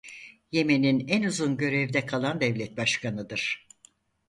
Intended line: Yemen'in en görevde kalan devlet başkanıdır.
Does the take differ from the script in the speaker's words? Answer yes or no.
yes